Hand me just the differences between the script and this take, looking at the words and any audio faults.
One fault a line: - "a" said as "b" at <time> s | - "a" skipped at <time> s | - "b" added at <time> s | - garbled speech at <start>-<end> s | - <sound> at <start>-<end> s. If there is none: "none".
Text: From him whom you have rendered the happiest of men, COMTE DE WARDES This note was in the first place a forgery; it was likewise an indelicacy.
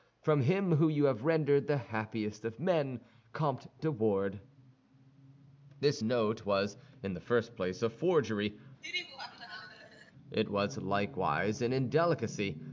- laugh at 8.8-10.1 s